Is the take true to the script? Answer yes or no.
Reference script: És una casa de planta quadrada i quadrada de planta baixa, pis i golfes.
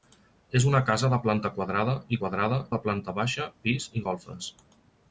yes